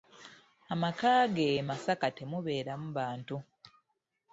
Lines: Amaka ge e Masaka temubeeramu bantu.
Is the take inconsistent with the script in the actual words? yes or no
no